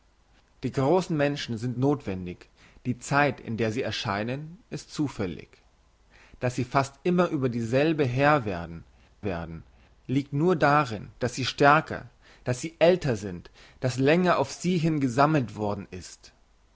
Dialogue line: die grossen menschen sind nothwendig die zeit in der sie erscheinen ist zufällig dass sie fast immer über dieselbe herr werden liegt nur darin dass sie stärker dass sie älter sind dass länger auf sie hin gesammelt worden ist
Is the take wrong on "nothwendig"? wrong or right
right